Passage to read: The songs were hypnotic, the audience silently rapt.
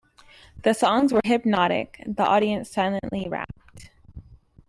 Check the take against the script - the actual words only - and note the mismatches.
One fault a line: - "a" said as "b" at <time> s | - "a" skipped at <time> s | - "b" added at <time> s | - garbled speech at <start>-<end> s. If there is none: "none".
none